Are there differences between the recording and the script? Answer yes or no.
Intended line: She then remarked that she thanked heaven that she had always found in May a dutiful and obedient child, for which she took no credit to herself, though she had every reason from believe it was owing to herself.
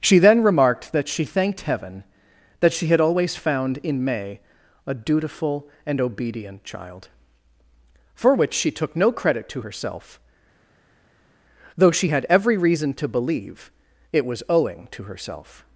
yes